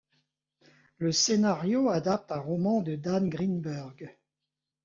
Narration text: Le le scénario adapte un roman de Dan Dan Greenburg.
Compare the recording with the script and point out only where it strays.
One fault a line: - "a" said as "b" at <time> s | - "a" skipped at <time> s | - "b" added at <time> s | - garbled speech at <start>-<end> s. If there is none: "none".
- "le" skipped at 1.1 s
- "Dan" skipped at 3.3 s